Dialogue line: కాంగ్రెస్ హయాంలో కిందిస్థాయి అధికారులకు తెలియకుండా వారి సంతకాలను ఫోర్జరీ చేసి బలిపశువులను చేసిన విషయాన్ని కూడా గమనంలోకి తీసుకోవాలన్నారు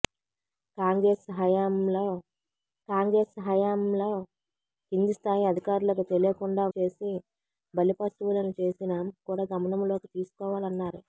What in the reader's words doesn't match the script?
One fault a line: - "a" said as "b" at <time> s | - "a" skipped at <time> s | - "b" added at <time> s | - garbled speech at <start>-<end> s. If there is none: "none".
- "కాంగ్రెస్ హయాంలో" added at 2.9 s
- "వారి సంతకాలను ఫోర్జరీ" skipped at 6.6 s
- "విషయాన్ని" skipped at 8.9 s